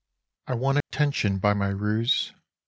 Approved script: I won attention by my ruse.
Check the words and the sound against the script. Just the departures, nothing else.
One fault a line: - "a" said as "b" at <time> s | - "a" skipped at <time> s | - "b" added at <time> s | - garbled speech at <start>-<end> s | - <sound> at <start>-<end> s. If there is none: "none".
- dropout at 0.8-0.9 s